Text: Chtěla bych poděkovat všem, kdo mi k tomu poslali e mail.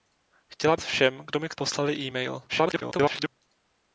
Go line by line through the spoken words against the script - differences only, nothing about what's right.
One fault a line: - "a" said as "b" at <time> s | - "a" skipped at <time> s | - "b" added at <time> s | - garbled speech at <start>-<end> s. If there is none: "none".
- "bych poděkovat" skipped at 0.8 s
- "tomu" skipped at 1.5 s
- garbled speech at 2.5-3.3 s